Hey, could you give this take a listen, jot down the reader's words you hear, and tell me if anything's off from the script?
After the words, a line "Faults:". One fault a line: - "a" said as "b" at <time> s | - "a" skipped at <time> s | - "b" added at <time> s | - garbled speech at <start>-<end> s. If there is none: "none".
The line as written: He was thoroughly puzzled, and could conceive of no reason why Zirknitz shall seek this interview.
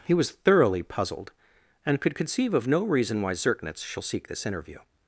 He was thoroughly puzzled, and could conceive of no reason why Zirknitz shall seek this interview.
Faults:
none